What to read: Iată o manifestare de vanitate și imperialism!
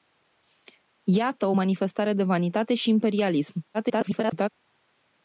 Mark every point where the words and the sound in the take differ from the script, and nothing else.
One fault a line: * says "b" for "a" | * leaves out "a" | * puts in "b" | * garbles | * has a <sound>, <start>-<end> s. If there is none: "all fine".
* garbles